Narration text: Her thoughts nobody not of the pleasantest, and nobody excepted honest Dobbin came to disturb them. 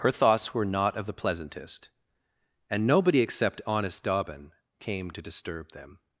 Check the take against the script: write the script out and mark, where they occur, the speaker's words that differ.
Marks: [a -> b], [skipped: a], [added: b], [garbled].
Her thoughts [nobody -> were] not of the pleasantest, and nobody [excepted -> except] honest Dobbin came to disturb them.